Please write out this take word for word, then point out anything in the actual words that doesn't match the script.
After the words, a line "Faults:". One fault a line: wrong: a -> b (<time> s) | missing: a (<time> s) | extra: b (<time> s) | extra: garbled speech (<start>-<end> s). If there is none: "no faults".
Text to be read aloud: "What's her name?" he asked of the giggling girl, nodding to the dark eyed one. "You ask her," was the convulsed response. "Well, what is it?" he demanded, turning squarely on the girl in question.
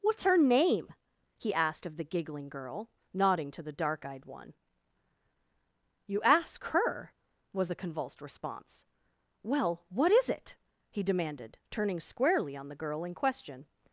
"What's her name?" he asked of the giggling girl, nodding to the dark eyed one. "You ask her," was the convulsed response. "Well, what is it?" he demanded, turning squarely on the girl in question.
Faults:
no faults